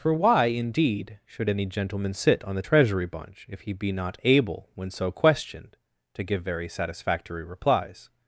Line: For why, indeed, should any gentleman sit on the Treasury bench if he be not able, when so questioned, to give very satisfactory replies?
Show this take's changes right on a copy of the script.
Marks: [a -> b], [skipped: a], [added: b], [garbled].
For why, indeed, should any gentleman sit on the Treasury [bench -> bunch] if he be not able, when so questioned, to give very satisfactory replies?